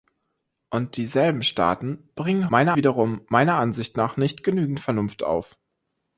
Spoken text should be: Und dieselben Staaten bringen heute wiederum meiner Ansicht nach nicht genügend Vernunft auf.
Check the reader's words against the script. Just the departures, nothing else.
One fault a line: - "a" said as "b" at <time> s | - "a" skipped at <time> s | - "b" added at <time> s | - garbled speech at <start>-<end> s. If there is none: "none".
- "heute" said as "meiner" at 2.5 s